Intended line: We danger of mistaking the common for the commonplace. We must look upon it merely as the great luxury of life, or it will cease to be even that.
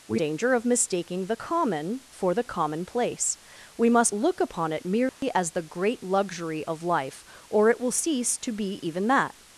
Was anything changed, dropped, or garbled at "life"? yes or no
no